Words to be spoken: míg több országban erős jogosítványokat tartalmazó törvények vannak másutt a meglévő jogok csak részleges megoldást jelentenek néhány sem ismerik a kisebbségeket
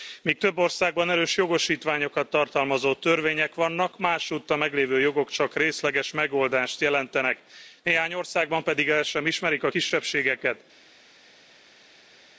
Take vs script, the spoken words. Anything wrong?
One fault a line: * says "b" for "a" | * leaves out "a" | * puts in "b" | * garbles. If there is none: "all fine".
* puts in "országban pedig el"